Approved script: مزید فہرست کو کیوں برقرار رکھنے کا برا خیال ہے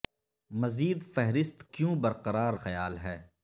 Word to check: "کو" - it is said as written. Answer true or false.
false